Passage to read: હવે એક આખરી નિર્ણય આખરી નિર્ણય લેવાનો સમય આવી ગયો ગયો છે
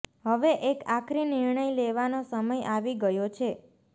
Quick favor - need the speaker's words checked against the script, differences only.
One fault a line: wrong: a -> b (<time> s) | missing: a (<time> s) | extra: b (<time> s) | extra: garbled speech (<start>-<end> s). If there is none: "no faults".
missing: આખરી નિર્ણય (1.6 s)
missing: ગયો (3.3 s)